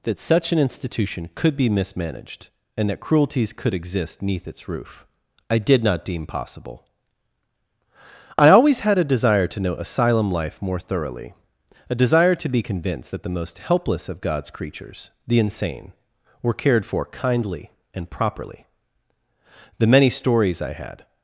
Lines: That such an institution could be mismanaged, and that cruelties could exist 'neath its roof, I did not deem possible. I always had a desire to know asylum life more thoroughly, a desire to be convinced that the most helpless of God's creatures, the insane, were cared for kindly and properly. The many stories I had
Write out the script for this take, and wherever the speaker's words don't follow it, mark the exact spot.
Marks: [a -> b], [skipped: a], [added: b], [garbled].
That such an institution could be mismanaged, and that cruelties could exist 'neath its roof, I did not deem possible. I always had a desire to know asylum life more thoroughly, a desire to be convinced that the most helpless of God's creatures, the insane, were cared for kindly and properly. The many stories I had